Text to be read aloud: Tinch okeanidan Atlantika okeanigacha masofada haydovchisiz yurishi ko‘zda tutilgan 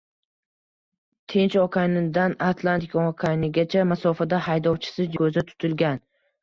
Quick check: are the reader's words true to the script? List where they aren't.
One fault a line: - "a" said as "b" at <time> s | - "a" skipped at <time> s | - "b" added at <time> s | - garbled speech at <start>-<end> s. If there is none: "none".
- "yurishi" skipped at 5.2 s